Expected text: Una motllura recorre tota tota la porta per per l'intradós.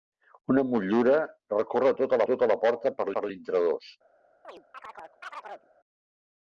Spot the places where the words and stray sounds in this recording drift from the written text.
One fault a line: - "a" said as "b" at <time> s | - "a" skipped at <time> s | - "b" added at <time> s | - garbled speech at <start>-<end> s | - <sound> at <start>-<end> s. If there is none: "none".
- chirp at 4.4-5.7 s